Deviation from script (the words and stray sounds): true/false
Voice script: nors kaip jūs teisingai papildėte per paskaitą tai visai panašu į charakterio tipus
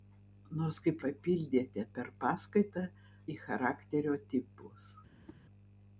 true